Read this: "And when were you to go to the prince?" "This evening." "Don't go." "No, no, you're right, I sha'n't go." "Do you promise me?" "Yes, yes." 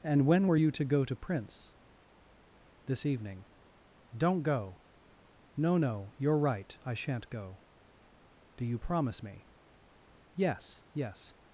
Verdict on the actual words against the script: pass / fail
fail